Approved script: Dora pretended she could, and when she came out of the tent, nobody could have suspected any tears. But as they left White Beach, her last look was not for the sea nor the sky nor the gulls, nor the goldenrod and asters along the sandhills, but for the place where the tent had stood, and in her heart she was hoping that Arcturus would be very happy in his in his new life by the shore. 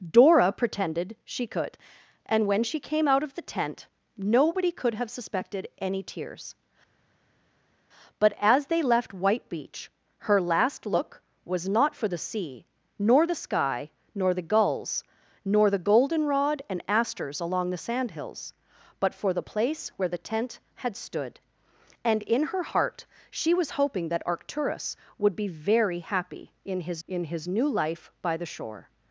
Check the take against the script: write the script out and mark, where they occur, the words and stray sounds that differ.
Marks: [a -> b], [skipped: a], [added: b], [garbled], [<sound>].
Dora pretended she could, and when she came out of the tent, nobody could have suspected any tears. But as they left White Beach, her last look was not for the sea nor the sky nor the gulls, nor the goldenrod and asters along the sandhills, but for the place where the tent had stood, and in her heart she was hoping that Arcturus would be very happy in his in his new life by the shore.